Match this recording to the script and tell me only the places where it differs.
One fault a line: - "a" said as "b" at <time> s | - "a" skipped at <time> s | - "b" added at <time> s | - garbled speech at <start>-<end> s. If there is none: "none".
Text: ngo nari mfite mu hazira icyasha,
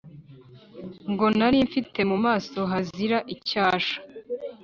- "maso" added at 2.2 s